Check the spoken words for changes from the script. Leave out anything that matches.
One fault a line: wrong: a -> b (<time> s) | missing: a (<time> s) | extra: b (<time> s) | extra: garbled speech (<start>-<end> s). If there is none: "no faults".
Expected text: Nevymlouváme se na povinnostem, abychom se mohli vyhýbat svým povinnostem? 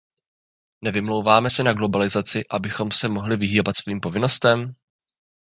wrong: povinnostem -> globalizaci (1.7 s)